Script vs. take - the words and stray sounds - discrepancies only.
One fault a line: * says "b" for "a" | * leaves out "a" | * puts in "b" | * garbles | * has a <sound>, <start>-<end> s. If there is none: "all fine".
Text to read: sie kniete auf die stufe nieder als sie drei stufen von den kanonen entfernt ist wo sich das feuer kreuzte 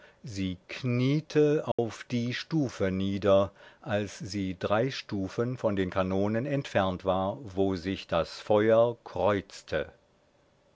* has a dropout, 1.7-1.8 s
* says "war" for "ist"